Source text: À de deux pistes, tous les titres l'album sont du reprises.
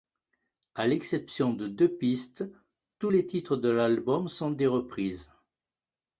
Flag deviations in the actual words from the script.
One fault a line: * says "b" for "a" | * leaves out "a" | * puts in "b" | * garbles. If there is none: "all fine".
* puts in "l'exception"
* puts in "de"
* says "des" for "du"